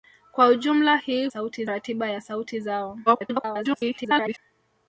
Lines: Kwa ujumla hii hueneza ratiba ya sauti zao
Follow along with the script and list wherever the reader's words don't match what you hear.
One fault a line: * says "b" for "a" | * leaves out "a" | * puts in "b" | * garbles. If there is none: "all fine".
* says "sauti" for "hueneza"
* garbles